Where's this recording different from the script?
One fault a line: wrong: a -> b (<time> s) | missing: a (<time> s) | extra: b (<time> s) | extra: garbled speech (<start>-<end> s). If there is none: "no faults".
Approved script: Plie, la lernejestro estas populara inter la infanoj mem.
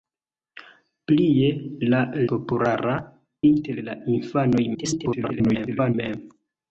missing: lernejestro estas (2.0 s)
extra: garbled speech (4.7-5.9 s)